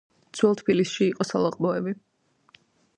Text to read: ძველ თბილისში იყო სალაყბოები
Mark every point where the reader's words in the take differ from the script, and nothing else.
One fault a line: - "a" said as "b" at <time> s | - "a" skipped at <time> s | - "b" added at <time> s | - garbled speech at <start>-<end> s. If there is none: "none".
none